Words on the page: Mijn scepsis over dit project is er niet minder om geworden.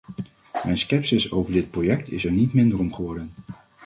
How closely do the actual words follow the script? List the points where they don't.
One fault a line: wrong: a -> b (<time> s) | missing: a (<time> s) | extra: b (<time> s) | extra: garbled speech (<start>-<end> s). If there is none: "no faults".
no faults